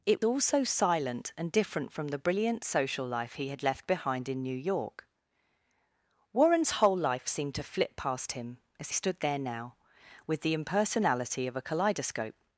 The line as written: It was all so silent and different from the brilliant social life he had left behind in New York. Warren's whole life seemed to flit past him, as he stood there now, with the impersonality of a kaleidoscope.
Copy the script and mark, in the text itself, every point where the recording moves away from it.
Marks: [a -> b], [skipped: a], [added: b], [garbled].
It [skipped: was] all so silent and different from the brilliant social life he had left behind in New York. Warren's whole life seemed to flit past him, as [skipped: he] stood there now, with the impersonality of a kaleidoscope.